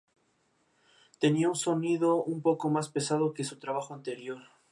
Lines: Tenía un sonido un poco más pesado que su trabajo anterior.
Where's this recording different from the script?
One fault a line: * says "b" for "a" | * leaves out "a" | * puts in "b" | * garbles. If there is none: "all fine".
all fine